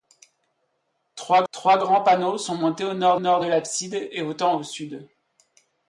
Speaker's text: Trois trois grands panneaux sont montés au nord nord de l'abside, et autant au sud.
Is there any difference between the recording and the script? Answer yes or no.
no